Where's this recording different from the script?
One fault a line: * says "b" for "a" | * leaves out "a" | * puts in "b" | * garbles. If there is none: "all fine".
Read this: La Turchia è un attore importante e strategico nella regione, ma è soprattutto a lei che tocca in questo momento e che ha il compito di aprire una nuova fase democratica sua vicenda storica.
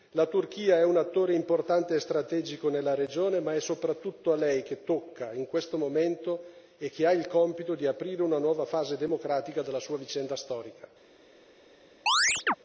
* puts in "della"